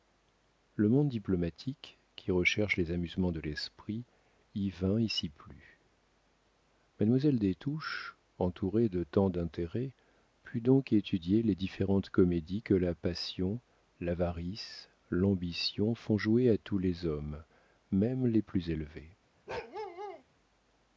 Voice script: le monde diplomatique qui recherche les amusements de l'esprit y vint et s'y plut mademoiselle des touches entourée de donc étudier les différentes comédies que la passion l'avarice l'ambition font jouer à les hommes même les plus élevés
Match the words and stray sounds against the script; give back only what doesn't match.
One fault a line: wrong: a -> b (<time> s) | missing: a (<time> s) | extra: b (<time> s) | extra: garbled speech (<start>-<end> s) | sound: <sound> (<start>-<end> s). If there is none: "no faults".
extra: tant d'intérêts put (9.0 s)
extra: tous (16.6 s)
sound: bark (19.5-20.2 s)